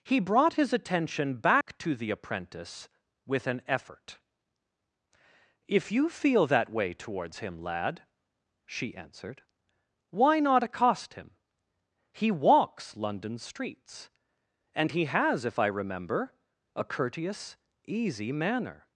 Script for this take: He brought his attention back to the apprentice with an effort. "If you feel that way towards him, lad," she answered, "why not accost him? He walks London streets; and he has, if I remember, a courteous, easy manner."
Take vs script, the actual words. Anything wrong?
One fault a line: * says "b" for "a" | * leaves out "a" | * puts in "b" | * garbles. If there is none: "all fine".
all fine